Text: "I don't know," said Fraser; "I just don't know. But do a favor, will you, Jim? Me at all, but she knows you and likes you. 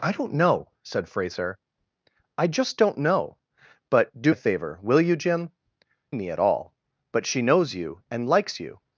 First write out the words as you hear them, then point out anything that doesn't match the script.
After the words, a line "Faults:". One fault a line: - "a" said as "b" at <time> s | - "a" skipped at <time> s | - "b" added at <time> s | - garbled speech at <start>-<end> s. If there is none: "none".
"I don't know," said Fraser; "I just don't know. But do a favor, will you, Jim? Me at all, but she knows you and likes you.
Faults:
none